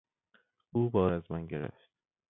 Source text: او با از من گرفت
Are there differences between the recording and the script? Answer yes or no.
no